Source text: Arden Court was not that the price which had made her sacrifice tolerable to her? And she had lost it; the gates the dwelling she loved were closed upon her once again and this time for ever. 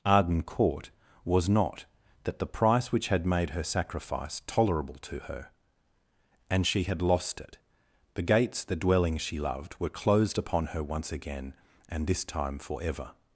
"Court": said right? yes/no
yes